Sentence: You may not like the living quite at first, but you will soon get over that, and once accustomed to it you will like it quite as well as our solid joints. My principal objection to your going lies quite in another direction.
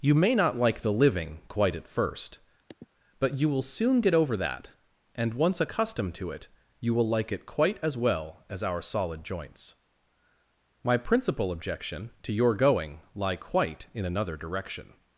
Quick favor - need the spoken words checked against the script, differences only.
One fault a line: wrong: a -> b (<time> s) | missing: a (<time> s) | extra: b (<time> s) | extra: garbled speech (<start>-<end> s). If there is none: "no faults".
wrong: lies -> lie (13.1 s)